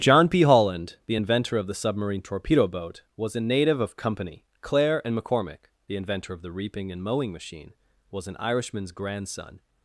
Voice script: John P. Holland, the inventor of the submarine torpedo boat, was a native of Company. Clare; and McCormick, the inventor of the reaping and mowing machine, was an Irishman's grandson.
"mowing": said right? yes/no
yes